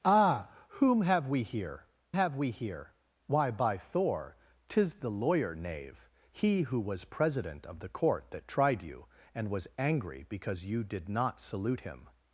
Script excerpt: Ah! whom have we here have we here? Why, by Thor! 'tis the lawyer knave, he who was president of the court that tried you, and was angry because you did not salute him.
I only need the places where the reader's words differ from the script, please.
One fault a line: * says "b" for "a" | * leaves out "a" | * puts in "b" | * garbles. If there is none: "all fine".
all fine